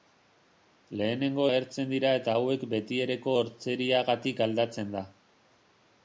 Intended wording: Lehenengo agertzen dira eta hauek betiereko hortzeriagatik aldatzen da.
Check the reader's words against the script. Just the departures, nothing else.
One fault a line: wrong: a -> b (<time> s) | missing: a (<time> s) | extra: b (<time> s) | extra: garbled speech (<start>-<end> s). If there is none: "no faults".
no faults